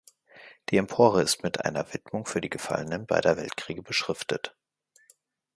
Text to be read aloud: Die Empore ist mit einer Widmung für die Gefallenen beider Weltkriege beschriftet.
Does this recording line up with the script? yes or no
yes